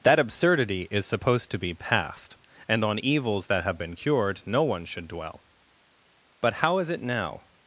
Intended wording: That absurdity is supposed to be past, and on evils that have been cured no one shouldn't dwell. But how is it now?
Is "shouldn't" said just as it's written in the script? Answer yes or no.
no